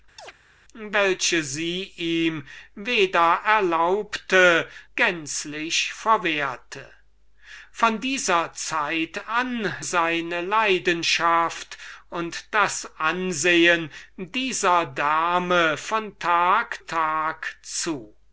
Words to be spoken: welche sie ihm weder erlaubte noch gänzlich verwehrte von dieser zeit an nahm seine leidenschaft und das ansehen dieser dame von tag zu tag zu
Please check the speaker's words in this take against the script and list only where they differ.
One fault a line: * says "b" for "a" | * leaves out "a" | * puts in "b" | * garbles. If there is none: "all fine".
* leaves out "noch"
* leaves out "nahm"
* leaves out "zu"